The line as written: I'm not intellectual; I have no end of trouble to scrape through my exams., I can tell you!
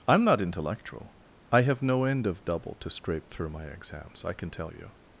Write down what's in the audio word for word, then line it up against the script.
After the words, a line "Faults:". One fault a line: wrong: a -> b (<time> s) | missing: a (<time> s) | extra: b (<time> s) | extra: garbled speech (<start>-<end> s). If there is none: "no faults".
I'm not intellectual; I have no end of double to scrape through my exams., I can tell you!
Faults:
wrong: trouble -> double (2.5 s)